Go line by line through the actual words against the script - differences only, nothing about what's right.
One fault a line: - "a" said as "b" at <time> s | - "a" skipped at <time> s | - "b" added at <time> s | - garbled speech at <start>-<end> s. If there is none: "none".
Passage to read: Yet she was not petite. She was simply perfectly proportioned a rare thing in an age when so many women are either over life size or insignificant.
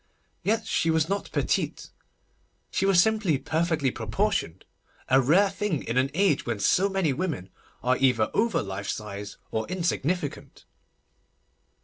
none